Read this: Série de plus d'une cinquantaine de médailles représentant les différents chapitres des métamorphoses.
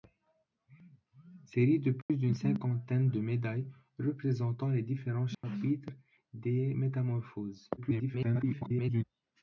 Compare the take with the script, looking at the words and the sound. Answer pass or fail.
fail